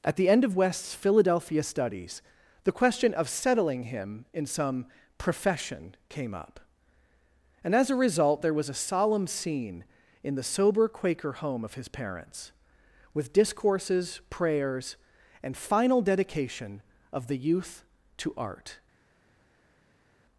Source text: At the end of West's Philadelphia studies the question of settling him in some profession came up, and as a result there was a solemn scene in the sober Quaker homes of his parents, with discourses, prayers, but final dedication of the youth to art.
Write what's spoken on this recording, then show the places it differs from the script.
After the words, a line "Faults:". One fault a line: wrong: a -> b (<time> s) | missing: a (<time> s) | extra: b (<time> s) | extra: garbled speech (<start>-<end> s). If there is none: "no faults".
At the end of West's Philadelphia studies the question of settling him in some profession came up, and as a result there was a solemn scene in the sober Quaker home of his parents, with discourses, prayers, and final dedication of the youth to art.
Faults:
wrong: homes -> home (11.3 s)
wrong: but -> and (15.4 s)